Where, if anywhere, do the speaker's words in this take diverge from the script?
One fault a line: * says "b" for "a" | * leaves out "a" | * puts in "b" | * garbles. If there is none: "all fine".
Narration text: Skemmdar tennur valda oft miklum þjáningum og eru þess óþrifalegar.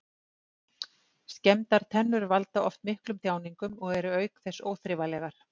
* puts in "auk"